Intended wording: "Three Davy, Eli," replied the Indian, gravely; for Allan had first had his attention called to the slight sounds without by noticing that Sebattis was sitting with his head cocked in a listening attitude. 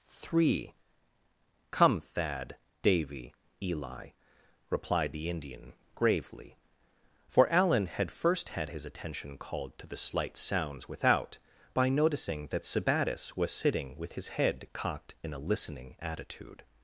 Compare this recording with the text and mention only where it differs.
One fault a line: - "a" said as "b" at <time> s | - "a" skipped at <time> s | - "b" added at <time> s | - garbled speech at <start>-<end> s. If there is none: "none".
- "come Thad" added at 1.7 s